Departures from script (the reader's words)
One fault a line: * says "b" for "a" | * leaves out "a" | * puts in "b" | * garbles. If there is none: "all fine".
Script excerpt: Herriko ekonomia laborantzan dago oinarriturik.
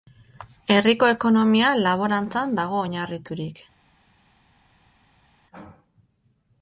all fine